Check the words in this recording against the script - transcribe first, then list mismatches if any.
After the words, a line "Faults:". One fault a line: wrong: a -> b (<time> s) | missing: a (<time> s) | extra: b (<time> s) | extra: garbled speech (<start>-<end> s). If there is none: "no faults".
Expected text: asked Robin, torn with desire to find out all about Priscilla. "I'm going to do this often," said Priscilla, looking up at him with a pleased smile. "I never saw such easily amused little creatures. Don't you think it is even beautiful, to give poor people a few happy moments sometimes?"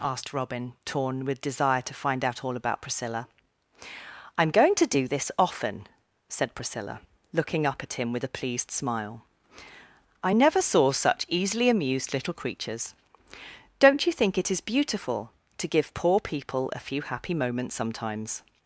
asked Robin, torn with desire to find out all about Priscilla. "I'm going to do this often," said Priscilla, looking up at him with a pleased smile. "I never saw such easily amused little creatures. Don't you think it is beautiful, to give poor people a few happy moments sometimes?"
Faults:
missing: even (14.6 s)